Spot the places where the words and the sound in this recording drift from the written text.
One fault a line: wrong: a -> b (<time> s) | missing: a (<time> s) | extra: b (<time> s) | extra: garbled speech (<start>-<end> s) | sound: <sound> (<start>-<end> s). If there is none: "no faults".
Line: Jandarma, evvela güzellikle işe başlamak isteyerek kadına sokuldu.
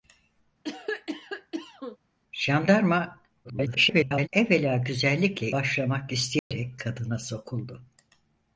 sound: cough (0.6-2.0 s)
extra: garbled speech (3.4-4.3 s)
missing: işe (5.5 s)
sound: dropout (6.4-6.5 s)